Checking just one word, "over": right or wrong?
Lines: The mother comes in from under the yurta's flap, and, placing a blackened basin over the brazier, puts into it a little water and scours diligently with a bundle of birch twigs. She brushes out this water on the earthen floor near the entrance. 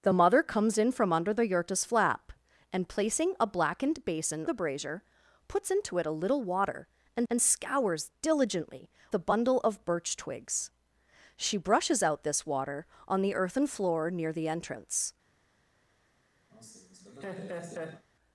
wrong